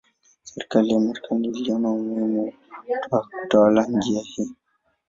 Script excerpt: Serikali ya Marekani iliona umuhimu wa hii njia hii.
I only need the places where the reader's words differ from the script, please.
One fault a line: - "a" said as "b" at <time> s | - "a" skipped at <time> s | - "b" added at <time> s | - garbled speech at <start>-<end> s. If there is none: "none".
- "hii" said as "kutawala" at 3.4 s